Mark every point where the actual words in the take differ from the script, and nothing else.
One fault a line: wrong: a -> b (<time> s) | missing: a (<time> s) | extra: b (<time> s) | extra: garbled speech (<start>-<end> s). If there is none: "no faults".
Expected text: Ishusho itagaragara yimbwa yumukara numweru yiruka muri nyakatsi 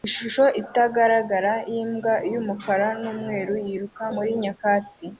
no faults